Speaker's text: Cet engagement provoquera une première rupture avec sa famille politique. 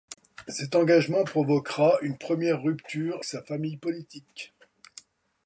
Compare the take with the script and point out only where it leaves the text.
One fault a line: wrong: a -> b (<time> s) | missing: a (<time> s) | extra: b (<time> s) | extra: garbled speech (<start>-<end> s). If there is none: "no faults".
missing: avec (3.2 s)